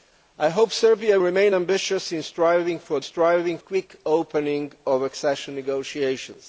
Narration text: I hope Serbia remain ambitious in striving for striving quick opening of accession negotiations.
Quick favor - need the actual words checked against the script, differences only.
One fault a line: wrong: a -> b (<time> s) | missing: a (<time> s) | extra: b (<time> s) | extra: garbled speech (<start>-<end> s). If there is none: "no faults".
no faults